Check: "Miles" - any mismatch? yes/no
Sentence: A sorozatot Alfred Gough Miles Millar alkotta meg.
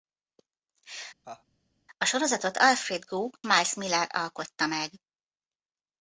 no